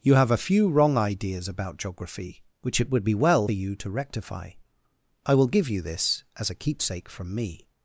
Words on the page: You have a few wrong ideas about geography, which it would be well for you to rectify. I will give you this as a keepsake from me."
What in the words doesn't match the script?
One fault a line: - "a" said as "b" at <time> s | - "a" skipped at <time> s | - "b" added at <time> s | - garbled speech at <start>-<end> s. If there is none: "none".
- "for" skipped at 3.5 s